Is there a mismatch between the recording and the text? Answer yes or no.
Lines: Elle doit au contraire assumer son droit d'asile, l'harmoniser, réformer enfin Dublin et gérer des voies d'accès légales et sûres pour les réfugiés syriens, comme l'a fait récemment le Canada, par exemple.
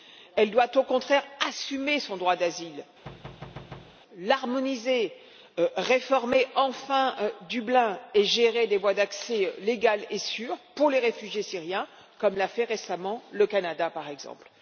no